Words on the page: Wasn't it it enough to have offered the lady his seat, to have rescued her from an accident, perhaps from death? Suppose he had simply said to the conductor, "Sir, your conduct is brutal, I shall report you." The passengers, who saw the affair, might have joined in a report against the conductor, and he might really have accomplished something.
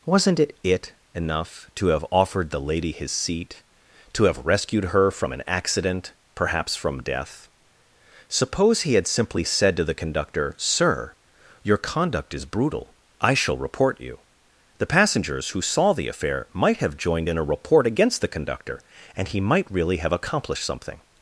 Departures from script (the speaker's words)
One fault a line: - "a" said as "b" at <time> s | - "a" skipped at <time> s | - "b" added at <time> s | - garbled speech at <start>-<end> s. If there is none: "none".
none